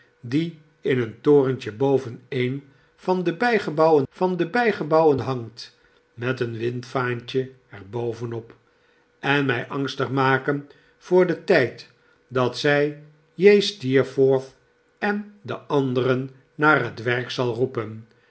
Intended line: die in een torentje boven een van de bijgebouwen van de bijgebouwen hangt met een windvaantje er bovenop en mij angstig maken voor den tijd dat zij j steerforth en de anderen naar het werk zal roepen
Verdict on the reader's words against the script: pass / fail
pass